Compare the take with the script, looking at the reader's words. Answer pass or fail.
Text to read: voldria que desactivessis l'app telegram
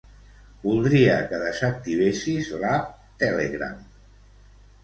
pass